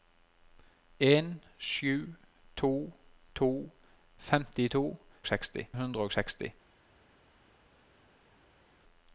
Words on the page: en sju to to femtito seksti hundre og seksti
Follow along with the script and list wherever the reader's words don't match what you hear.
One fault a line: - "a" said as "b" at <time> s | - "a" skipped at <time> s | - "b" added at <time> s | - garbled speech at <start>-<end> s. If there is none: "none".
none